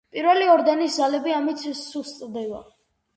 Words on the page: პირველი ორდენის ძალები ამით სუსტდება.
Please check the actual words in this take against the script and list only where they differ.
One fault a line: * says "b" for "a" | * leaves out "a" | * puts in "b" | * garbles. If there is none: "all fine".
all fine